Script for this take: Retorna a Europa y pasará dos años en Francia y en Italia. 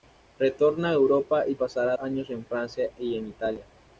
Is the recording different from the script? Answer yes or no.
yes